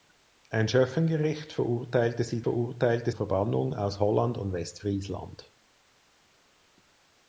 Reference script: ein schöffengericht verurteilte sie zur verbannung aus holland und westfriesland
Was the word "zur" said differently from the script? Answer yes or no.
yes